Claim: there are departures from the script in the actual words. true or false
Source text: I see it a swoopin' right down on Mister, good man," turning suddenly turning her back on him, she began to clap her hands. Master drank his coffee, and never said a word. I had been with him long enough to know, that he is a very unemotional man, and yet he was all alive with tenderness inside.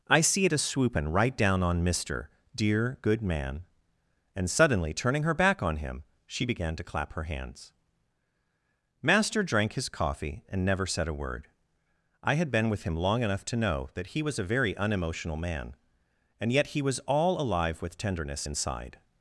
true